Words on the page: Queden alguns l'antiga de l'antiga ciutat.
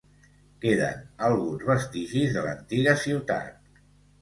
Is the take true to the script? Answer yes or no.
no